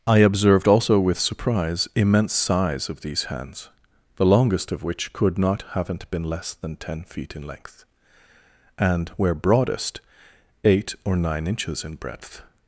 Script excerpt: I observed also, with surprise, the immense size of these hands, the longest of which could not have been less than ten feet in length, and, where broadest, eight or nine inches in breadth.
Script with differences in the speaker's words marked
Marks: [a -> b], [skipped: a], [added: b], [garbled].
I observed also, with surprise, [skipped: the] immense size of these hands, the longest of which could not [have -> haven't] been less than ten feet in length, and, where broadest, eight or nine inches in breadth.